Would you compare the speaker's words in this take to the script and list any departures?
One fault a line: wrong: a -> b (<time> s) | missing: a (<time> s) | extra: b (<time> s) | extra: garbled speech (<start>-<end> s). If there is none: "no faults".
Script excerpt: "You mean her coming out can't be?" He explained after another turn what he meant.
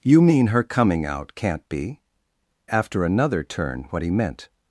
missing: He explained (2.0 s)